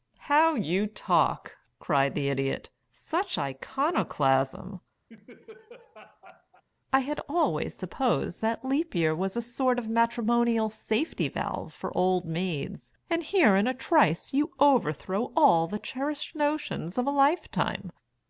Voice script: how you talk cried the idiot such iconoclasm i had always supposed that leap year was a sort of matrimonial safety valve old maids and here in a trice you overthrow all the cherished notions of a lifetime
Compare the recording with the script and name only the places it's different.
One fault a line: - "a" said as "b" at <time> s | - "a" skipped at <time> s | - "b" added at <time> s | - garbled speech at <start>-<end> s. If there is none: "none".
- "for" added at 11.7 s